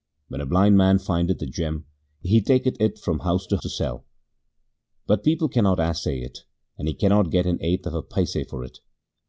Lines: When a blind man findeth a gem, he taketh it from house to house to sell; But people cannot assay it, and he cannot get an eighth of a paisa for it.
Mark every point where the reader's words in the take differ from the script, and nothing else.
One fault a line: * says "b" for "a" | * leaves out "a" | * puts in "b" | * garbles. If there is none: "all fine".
* leaves out "house"